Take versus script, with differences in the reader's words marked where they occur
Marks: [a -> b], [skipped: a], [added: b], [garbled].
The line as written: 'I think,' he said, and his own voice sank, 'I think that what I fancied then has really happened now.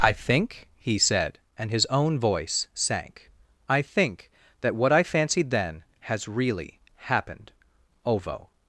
'I think,' he said, and his own voice sank, 'I think that what I fancied then has really happened [now. -> ovo]